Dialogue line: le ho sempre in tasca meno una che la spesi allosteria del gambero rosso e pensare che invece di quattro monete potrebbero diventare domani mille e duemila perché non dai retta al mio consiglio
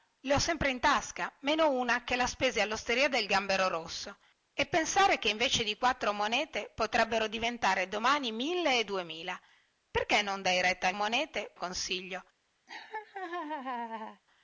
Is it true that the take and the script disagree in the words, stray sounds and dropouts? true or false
true